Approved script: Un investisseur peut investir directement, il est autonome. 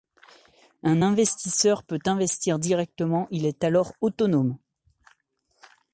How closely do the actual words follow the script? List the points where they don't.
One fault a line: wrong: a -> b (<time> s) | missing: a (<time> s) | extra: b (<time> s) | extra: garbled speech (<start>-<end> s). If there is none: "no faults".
extra: alors (3.6 s)